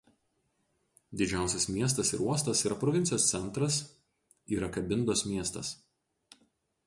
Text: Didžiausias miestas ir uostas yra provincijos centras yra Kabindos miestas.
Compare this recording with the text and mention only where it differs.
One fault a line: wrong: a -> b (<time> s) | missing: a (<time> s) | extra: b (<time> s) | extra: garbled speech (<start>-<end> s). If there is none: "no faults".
no faults